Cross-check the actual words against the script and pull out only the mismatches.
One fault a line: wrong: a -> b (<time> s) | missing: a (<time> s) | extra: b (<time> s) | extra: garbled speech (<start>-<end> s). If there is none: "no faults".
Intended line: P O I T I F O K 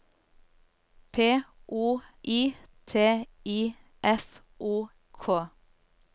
no faults